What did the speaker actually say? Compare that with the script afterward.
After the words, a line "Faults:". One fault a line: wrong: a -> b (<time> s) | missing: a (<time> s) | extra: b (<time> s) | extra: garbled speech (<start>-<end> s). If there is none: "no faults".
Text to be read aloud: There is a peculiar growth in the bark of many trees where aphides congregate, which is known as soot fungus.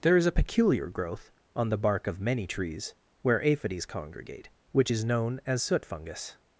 There is a peculiar growth on the bark of many trees where aphides congregate, which is known as soot fungus.
Faults:
wrong: in -> on (1.6 s)